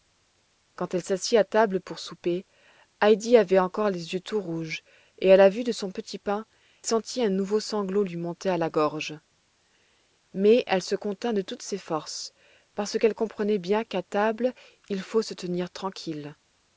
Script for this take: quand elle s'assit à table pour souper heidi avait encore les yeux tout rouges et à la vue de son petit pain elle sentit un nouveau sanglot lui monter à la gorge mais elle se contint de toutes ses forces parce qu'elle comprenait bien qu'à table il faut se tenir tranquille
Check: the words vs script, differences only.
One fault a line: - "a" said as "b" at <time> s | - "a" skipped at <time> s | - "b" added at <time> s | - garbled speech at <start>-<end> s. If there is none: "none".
- "elle" skipped at 6.5 s